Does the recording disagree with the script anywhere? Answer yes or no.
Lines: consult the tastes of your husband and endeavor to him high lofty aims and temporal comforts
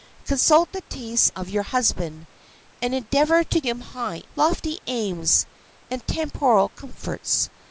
no